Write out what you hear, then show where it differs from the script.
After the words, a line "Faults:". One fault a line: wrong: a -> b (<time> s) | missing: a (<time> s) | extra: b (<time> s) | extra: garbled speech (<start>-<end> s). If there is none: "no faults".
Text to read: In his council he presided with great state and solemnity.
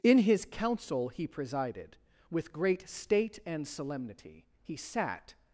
In his council he presided with great state and solemnity. He sat
Faults:
extra: He sat (4.6 s)